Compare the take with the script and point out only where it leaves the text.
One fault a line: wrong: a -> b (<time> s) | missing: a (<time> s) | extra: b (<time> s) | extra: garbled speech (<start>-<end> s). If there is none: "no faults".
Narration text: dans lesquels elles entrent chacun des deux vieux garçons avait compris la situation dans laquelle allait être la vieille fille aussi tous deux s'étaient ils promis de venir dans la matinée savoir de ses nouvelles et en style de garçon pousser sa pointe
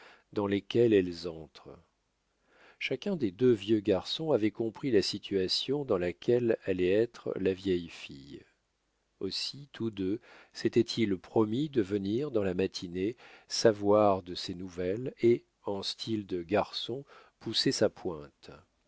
no faults